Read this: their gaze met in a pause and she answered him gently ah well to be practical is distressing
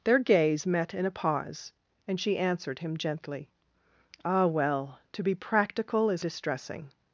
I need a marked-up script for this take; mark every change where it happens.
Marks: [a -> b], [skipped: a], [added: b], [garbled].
their gaze met in a pause and she answered him gently ah well to be practical is distressing